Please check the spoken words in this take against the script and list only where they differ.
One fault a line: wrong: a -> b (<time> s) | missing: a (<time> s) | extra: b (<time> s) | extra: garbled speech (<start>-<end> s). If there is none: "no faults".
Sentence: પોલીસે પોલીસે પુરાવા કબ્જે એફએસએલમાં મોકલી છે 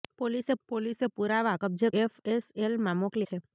no faults